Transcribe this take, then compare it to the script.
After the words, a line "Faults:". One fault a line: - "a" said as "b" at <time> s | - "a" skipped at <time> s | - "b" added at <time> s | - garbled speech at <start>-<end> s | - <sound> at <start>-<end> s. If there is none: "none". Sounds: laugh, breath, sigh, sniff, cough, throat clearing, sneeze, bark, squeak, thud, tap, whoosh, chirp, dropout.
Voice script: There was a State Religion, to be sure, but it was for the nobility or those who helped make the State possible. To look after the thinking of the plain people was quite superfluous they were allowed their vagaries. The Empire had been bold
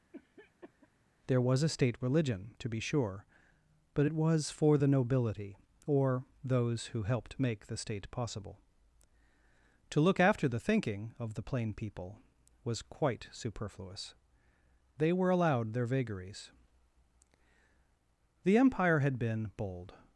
There was a State Religion, to be sure, but it was for the nobility or those who helped make the State possible. To look after the thinking of the plain people was quite superfluous they were allowed their vagaries. The Empire had been bold
Faults:
- cough at 0.1-0.9 s